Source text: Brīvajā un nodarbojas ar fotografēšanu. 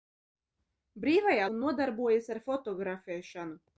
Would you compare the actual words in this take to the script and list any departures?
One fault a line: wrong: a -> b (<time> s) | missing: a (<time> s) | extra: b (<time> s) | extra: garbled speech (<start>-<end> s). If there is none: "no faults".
no faults